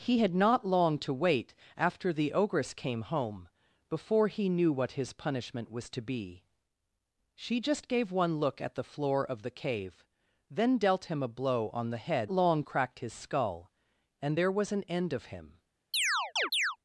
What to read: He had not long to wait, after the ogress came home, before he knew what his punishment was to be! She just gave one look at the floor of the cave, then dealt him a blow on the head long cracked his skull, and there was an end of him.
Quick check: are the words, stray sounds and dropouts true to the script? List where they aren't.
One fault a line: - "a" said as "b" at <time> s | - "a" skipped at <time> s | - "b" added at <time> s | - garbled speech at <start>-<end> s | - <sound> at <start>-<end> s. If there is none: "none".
- chirp at 15.9-16.8 s